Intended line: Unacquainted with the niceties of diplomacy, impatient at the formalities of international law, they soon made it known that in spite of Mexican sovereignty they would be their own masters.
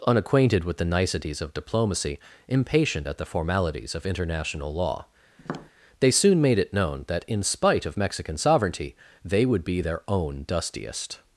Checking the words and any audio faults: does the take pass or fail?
fail